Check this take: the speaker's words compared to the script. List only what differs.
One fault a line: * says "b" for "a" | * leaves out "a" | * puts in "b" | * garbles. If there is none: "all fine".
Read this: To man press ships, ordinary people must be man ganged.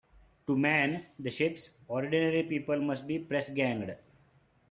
* says "the" for "press"
* says "press" for "man"